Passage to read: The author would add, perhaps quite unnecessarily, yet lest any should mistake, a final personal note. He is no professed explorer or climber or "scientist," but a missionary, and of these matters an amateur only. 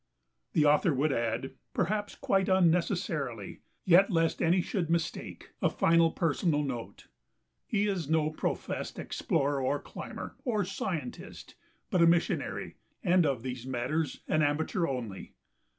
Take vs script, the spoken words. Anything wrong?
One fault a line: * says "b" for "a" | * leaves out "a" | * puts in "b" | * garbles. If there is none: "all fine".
all fine